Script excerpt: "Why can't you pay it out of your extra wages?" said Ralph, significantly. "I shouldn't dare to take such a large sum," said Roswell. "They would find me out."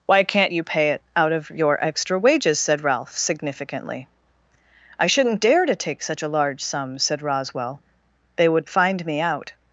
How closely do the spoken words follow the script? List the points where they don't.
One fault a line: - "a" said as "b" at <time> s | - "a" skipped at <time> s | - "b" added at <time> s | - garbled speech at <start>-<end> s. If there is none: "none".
none